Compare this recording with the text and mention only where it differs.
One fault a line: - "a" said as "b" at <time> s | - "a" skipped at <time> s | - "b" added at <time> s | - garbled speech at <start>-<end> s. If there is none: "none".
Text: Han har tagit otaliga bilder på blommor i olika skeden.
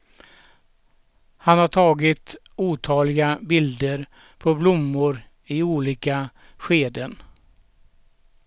none